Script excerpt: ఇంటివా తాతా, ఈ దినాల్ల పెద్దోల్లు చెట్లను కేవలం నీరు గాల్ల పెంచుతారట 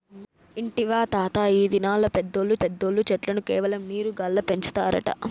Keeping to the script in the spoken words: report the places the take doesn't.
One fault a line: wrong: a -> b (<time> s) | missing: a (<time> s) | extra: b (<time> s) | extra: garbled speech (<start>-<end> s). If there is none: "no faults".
extra: పెద్దోల్లు (2.6 s)